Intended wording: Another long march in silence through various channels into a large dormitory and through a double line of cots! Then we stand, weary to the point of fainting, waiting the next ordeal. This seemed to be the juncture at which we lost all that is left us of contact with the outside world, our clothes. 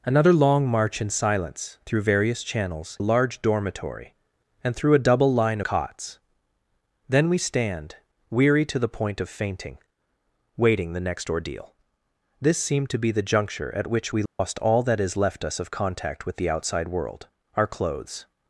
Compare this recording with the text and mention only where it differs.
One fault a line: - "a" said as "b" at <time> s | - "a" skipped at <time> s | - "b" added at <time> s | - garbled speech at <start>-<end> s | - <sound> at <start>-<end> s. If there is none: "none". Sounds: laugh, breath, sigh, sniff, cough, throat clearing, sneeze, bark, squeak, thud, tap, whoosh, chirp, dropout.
- "into" skipped at 3.0 s
- "of" skipped at 5.6 s
- dropout at 14.3-14.4 s